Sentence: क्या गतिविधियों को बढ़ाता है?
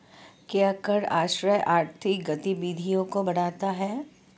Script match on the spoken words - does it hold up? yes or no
no